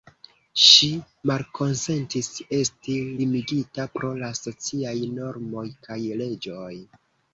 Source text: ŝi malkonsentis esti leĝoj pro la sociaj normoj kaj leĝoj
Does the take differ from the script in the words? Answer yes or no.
yes